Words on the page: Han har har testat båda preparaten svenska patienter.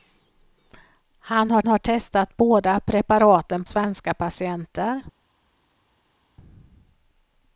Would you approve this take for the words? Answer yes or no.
yes